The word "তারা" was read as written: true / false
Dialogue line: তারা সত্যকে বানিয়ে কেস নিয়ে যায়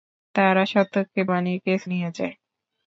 true